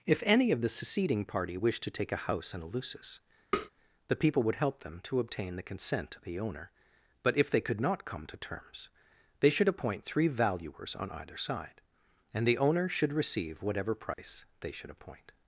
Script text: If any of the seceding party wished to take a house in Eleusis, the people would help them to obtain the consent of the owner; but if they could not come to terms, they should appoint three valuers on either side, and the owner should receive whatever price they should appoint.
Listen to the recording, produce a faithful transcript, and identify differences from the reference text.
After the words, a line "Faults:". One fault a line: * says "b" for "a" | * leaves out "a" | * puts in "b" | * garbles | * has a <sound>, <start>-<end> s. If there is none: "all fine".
If any of the seceding party wished to take a house in Eleusis, the people would help them to obtain the consent of the owner; but if they could not come to terms, they should appoint three valuers on either side, and the owner should receive whatever price they should appoint.
Faults:
* has a tap, 3.5-3.7 s
* has a dropout, 14.1-14.2 s